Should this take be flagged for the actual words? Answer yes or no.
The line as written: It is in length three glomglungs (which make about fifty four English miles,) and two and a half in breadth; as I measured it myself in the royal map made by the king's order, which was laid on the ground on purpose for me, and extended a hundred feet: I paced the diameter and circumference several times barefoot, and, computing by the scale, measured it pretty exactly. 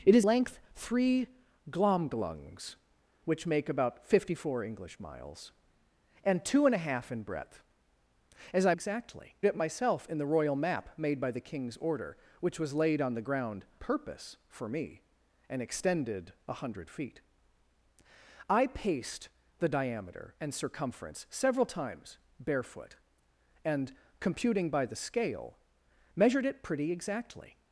yes